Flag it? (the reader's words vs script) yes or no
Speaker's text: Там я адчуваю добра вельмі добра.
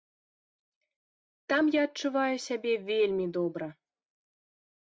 yes